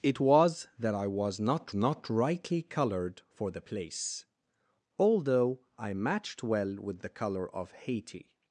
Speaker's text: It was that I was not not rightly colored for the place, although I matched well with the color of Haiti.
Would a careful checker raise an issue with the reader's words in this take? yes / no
no